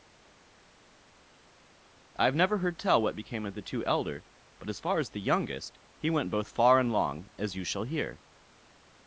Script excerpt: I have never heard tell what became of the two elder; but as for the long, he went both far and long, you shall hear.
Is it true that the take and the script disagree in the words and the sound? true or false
true